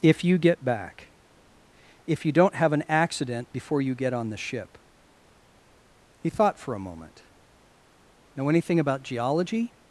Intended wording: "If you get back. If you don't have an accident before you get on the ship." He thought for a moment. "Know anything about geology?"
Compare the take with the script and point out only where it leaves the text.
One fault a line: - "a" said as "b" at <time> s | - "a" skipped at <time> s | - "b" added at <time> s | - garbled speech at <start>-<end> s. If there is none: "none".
none